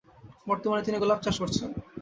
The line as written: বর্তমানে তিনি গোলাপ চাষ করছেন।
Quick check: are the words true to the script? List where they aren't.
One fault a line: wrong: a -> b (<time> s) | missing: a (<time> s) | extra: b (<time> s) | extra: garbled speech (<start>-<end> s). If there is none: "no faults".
no faults